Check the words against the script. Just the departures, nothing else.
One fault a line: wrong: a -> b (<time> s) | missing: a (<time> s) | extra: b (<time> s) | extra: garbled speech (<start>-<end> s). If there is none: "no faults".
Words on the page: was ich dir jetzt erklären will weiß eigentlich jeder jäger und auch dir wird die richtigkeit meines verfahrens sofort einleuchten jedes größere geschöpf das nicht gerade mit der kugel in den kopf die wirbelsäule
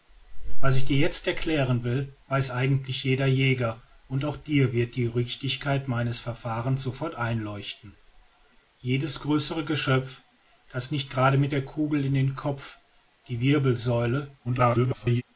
extra: garbled speech (14.4-15.2 s)